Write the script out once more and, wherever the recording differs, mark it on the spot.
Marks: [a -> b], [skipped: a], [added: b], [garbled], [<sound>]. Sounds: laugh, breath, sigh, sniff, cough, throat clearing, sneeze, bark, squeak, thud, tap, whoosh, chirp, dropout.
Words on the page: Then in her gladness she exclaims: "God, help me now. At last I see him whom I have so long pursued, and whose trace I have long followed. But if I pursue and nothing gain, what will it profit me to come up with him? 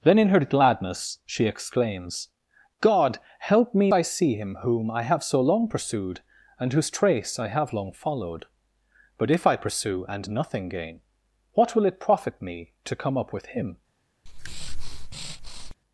Then in her gladness she exclaims: "God, help me [skipped: now. At last] I see him whom I have so long pursued, and whose trace I have long followed. But if I pursue and nothing gain, what will it profit me to come up with him? [breath]